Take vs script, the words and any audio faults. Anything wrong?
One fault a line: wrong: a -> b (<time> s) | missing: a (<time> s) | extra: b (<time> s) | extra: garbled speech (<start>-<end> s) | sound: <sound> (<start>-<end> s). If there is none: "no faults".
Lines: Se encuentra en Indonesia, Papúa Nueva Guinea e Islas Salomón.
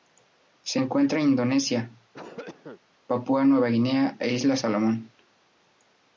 sound: cough (2.1-2.8 s)